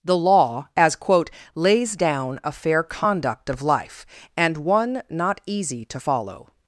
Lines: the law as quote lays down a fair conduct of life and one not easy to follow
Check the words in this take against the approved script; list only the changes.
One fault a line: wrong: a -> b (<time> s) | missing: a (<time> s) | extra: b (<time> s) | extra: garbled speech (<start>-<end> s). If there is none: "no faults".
no faults